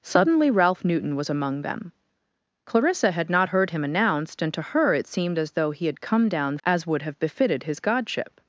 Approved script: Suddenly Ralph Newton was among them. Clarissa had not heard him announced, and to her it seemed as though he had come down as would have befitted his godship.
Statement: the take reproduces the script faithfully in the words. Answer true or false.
true